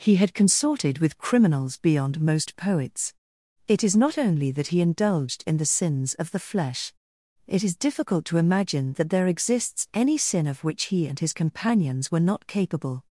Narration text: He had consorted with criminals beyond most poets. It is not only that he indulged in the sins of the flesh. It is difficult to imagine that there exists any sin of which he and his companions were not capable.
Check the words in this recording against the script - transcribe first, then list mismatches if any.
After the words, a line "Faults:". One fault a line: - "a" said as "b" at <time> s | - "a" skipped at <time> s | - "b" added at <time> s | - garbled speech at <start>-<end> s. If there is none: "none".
He had consorted with criminals beyond most poets. It is not only that he indulged in the sins of the flesh. It is difficult to imagine that there exists any sin of which he and his companions were not capable.
Faults:
none